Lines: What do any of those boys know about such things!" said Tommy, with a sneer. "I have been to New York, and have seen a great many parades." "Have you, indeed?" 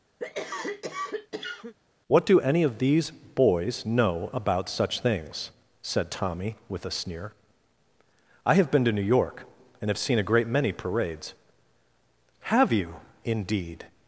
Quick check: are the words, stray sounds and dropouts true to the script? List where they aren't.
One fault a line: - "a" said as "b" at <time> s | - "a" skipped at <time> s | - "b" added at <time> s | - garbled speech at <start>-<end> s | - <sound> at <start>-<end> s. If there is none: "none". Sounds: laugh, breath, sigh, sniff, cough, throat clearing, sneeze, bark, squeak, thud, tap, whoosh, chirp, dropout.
- cough at 0.2-1.7 s
- "those" said as "these" at 2.8 s